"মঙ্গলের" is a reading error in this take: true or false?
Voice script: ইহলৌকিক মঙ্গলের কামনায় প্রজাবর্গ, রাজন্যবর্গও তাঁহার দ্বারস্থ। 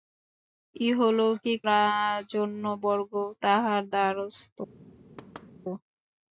true